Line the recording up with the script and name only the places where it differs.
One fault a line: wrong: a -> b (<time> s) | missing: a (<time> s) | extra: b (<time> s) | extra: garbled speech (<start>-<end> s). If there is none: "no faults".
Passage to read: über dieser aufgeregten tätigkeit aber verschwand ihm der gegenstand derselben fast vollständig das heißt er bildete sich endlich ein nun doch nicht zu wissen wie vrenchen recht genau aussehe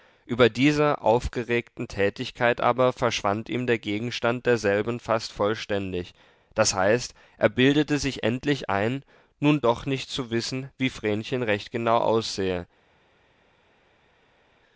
no faults